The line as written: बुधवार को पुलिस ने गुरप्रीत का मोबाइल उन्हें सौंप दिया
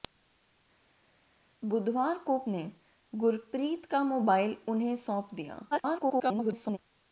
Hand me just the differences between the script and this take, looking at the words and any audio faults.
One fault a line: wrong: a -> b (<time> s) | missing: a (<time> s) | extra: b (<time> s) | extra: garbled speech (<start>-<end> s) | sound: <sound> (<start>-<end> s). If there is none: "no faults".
missing: पुलिस (2.4 s)
extra: garbled speech (5.7-6.8 s)